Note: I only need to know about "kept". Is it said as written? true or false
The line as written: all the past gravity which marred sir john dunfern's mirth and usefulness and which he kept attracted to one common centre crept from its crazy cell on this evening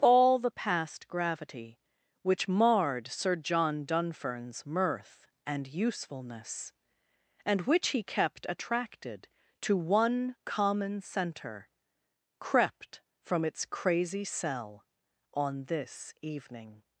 true